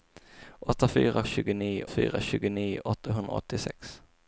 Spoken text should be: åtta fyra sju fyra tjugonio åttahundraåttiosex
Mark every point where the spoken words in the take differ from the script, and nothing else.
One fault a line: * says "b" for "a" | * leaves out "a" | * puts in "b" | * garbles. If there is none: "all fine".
* says "tjugonio" for "sju"